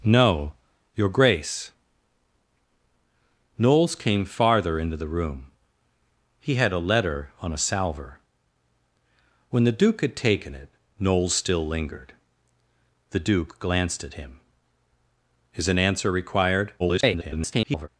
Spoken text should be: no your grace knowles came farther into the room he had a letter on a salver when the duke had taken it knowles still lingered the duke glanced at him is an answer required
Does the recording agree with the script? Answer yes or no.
no